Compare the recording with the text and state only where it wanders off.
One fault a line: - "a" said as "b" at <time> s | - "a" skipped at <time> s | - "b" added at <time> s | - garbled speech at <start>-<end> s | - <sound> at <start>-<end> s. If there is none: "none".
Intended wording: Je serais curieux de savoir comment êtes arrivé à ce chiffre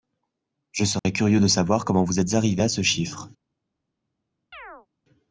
- dropout at 1.0-1.0 s
- "vous" added at 2.0 s
- chirp at 4.5-4.9 s